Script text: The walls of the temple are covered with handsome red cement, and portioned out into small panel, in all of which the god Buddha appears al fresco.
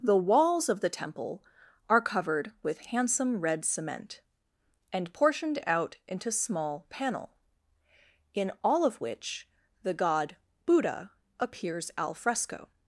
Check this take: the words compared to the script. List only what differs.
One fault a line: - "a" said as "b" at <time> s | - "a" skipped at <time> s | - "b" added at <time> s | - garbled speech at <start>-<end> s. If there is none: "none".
none